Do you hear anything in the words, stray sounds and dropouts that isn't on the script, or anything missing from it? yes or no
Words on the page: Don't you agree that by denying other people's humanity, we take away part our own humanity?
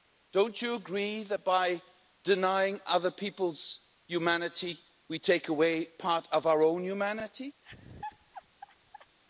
yes